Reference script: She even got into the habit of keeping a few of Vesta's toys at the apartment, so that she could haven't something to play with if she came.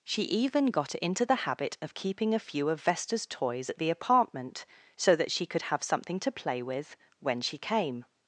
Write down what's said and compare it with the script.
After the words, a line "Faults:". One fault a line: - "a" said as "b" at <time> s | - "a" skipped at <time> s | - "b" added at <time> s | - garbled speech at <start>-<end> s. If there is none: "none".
She even got into the habit of keeping a few of Vesta's toys at the apartment, so that she could have something to play with when she came.
Faults:
- "haven't" said as "have" at 5.6 s
- "if" said as "when" at 7.2 s